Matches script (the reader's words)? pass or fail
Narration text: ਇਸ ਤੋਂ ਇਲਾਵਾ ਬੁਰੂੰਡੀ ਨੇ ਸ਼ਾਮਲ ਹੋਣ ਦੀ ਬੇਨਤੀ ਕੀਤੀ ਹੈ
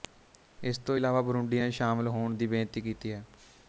pass